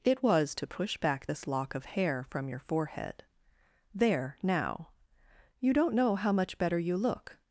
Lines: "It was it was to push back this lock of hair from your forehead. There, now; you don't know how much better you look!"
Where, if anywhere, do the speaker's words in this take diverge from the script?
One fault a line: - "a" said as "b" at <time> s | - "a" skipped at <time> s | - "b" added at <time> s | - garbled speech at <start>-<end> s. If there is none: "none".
- "it was" skipped at 0.6 s